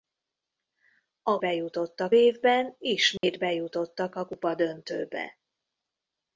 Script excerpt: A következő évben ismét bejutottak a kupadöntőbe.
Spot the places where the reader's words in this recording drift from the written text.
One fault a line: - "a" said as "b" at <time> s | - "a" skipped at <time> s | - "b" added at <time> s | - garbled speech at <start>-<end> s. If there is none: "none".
- "következő" said as "bejutottak" at 1.4 s